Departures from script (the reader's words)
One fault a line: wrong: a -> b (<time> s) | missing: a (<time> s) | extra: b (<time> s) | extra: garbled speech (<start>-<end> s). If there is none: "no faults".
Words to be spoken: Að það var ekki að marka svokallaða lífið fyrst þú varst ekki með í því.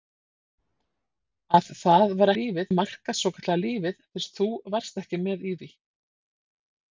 wrong: ekki -> lífið (2.3 s)